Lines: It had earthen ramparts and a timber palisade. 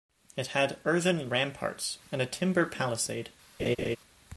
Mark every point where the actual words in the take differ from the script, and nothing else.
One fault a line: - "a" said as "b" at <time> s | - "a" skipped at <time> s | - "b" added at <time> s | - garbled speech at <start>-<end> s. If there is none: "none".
none